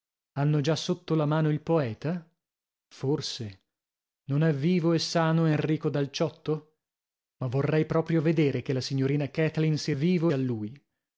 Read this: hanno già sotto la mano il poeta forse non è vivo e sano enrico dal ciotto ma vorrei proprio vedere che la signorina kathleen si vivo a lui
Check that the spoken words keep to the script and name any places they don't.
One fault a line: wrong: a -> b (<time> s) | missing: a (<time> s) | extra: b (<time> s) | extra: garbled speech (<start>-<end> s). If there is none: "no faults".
no faults